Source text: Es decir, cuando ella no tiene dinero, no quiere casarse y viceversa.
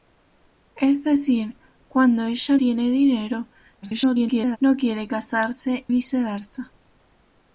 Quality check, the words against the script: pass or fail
fail